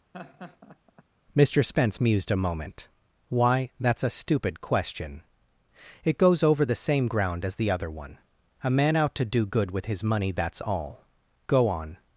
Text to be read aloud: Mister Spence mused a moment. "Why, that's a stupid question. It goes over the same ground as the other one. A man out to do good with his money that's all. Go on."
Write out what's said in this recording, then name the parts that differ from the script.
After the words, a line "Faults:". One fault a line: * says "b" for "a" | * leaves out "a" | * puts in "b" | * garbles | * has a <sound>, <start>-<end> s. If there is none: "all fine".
Mister Spence mused a moment. "Why, that's a stupid question. It goes over the same ground as the other one. A man out to do good with his money that's all. Go on."
Faults:
* has a laugh, 0.1-1.0 s